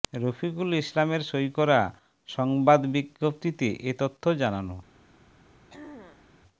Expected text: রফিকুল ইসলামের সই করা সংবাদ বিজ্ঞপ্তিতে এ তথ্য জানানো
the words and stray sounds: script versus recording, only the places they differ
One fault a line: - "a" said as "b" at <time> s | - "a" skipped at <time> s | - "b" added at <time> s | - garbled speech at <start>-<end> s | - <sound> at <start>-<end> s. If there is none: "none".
- throat clearing at 5.7-6.3 s